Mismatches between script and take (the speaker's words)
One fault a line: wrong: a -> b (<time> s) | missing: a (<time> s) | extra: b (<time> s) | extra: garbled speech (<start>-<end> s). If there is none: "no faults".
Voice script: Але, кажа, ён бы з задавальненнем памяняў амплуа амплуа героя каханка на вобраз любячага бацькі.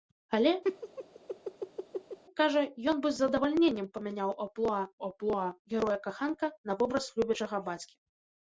no faults